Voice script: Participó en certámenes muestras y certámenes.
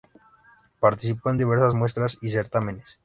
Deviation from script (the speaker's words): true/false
true